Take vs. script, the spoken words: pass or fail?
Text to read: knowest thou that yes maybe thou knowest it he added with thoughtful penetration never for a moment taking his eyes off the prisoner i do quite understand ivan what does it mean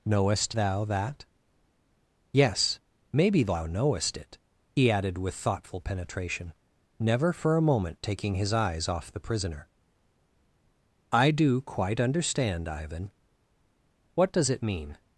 pass